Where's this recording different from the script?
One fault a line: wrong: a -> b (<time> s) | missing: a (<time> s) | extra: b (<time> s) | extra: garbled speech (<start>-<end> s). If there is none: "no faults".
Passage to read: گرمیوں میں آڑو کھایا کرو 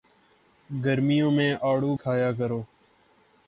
no faults